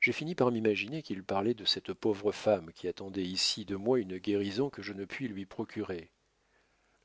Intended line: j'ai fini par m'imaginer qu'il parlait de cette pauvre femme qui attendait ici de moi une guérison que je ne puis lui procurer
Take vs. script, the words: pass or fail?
pass